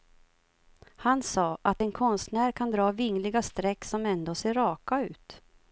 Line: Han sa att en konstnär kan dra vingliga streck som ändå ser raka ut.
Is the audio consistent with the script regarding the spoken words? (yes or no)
yes